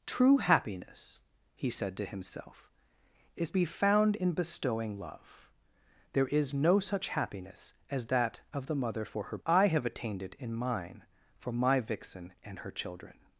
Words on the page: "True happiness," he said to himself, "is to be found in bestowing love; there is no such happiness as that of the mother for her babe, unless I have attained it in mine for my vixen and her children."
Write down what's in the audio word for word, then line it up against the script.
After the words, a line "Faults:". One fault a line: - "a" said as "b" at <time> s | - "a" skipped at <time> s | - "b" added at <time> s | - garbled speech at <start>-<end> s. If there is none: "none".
"True happiness," he said to himself, "is be found in bestowing love; there is no such happiness as that of the mother for her I have attained it in mine for my vixen and her children."
Faults:
- "to" skipped at 3.5 s
- "babe unless" skipped at 9.4 s